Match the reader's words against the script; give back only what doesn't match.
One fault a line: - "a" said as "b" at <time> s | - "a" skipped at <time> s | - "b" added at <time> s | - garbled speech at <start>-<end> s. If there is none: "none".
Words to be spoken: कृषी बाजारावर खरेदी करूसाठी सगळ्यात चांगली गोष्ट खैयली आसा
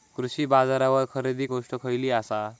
- "करूसाठी सगळ्यात चांगली" skipped at 1.5 s